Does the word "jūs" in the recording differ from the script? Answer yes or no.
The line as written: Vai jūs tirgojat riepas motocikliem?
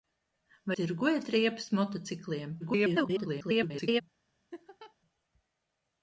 yes